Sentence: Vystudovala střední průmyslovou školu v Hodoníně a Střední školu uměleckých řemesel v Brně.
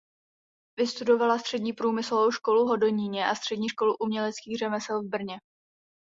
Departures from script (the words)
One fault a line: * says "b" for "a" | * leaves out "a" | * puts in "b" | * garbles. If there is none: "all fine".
all fine